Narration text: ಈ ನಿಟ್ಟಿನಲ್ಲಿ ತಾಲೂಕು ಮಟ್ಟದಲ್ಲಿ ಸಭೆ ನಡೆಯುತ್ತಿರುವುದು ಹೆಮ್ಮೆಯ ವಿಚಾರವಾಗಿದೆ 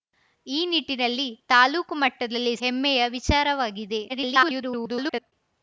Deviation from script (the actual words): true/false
true